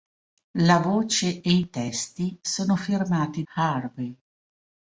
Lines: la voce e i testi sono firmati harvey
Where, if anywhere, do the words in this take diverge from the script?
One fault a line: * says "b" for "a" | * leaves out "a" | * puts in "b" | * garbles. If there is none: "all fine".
all fine